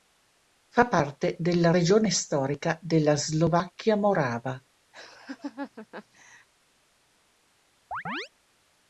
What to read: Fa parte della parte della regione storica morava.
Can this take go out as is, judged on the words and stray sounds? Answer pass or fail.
fail